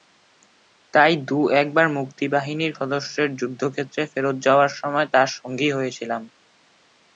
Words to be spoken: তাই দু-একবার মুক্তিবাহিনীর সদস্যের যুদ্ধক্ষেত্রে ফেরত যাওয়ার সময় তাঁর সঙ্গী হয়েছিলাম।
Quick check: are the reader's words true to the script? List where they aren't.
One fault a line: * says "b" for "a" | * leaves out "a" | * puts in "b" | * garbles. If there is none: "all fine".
all fine